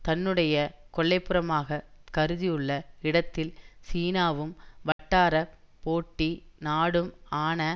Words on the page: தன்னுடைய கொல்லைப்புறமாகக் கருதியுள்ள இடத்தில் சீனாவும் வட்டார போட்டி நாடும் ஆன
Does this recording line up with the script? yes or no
yes